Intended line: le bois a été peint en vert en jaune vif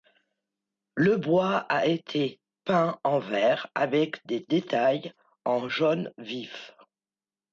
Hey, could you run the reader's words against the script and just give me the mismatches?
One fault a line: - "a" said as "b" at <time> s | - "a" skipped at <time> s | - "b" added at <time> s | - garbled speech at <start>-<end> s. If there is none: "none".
- "avec des détails" added at 3.8 s